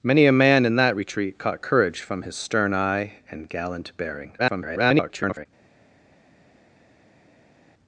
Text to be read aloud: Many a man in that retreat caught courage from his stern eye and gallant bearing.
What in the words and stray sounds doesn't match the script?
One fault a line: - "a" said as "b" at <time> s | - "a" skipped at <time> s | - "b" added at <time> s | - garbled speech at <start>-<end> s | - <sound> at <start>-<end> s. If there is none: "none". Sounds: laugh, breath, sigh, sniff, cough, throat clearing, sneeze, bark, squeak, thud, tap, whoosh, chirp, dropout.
- garbled speech at 4.4-5.5 s